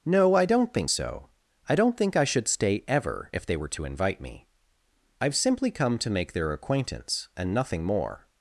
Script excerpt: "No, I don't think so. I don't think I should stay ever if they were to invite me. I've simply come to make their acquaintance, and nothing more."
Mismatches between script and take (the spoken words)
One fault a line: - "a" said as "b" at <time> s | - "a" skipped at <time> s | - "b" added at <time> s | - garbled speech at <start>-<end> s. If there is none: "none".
none